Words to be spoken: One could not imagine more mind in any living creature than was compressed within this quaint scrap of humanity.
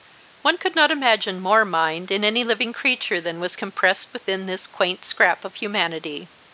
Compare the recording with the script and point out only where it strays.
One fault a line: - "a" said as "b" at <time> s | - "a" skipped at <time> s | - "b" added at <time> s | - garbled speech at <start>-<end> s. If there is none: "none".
none